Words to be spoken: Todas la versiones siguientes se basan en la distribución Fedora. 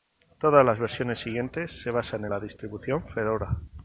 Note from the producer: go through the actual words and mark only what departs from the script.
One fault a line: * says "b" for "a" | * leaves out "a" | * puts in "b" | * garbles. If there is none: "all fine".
* says "las" for "la"